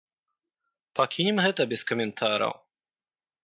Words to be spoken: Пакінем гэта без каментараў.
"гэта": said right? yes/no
yes